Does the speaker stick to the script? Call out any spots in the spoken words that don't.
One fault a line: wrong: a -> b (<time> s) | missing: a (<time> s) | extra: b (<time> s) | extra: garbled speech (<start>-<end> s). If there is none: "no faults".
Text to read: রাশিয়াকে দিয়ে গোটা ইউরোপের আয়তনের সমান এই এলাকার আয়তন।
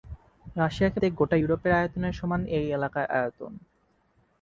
no faults